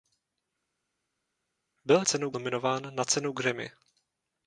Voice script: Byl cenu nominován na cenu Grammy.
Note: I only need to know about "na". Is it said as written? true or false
true